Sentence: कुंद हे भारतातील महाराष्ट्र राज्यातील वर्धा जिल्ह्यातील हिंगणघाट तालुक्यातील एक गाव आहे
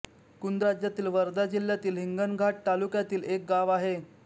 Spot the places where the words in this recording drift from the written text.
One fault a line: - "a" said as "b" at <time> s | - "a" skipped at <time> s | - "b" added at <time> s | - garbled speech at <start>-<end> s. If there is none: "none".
- "हे भारतातील महाराष्ट्र" skipped at 0.6 s